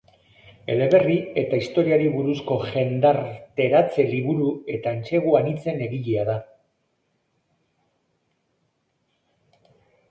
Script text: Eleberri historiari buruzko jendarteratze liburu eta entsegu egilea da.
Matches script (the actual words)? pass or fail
fail